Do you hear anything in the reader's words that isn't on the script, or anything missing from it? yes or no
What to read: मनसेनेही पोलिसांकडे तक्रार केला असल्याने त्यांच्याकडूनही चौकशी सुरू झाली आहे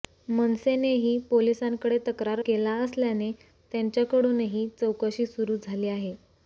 no